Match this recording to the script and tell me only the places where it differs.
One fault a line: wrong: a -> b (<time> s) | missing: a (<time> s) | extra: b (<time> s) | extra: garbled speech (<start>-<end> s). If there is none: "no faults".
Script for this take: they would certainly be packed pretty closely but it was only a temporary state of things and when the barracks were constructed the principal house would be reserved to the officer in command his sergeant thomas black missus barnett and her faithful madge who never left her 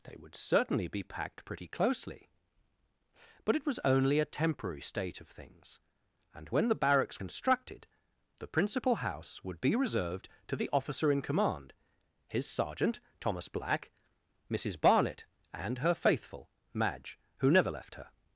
missing: were (7.2 s)